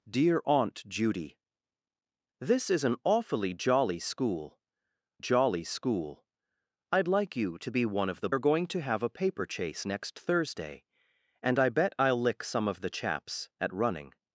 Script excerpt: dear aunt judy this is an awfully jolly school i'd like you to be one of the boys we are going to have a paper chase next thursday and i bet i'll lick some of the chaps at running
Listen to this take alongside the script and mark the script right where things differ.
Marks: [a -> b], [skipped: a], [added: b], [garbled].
dear aunt judy this is an awfully jolly school [added: jolly school] i'd like you to be one of the [skipped: boys we] are going to have a paper chase next thursday and i bet i'll lick some of the chaps at running